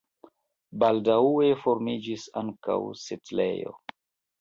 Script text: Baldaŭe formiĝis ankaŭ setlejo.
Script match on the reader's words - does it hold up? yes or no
yes